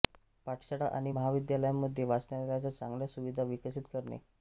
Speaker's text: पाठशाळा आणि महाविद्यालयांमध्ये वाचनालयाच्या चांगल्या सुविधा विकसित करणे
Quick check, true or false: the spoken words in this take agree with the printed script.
true